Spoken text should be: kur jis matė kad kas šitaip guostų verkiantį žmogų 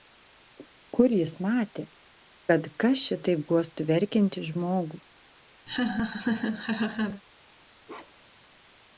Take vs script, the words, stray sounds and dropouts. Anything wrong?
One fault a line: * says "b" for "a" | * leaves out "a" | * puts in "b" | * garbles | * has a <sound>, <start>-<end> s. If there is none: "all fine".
* has a laugh, 5.7-7.2 s
* has a bark, 7.9-8.5 s